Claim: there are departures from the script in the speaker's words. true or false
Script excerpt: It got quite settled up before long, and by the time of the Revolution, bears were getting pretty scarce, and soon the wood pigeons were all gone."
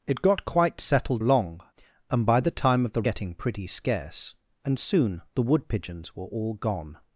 true